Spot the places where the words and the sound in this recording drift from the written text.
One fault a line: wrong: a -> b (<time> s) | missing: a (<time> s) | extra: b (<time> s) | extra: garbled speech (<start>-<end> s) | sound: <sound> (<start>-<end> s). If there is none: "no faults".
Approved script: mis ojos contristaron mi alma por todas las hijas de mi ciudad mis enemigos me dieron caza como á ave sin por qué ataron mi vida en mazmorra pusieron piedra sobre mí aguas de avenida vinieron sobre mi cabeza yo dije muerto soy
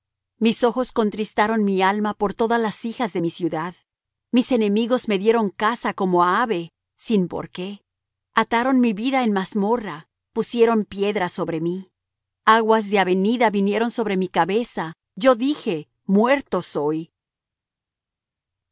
no faults